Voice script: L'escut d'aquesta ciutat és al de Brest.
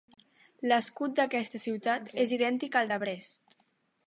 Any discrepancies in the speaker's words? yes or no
yes